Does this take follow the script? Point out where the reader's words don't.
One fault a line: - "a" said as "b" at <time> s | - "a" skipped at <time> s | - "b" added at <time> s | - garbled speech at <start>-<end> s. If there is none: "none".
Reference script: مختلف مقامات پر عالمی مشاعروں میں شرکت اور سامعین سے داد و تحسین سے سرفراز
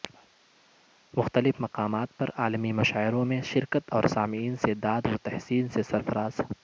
none